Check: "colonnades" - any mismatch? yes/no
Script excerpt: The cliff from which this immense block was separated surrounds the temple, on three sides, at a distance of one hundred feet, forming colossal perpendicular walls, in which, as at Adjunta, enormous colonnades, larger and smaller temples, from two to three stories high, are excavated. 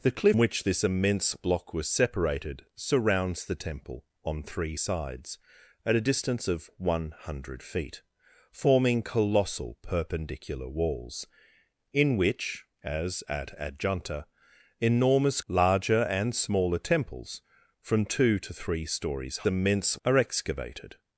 yes